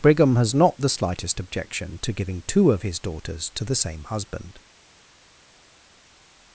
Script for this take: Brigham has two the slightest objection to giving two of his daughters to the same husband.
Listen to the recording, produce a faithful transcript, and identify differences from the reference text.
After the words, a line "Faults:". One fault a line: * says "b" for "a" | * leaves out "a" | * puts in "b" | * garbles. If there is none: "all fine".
Brigham has not the slightest objection to giving two of his daughters to the same husband.
Faults:
* says "not" for "two"